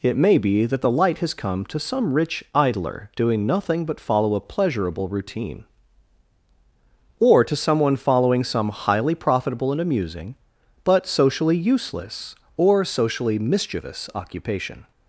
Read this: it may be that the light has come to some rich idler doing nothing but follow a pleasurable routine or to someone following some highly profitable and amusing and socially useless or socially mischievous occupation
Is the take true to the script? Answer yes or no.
no